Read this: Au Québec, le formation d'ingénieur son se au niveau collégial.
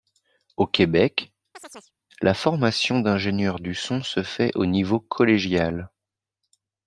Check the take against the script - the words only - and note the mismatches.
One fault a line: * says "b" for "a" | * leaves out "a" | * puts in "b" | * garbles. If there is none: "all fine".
* says "la" for "le"
* puts in "du"
* puts in "fait"